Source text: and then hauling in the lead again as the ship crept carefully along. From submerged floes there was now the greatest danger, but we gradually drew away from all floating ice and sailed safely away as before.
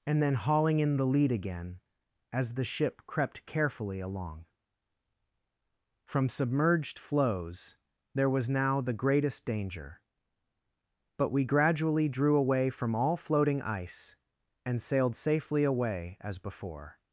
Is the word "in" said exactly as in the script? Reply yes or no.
yes